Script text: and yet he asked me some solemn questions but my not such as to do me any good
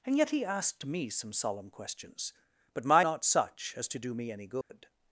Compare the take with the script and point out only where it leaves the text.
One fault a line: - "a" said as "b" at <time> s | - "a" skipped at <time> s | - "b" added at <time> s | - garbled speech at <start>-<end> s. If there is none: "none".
none